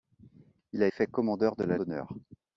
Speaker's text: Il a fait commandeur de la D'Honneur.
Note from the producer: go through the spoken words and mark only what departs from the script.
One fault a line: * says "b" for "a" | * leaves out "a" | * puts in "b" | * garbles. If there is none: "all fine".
all fine